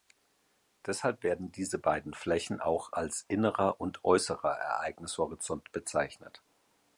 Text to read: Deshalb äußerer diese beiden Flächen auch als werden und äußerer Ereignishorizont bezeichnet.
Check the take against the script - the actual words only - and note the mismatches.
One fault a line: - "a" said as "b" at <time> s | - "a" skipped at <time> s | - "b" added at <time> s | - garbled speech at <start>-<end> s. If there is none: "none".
- "äußerer" said as "werden" at 1.2 s
- "werden" said as "innerer" at 3.3 s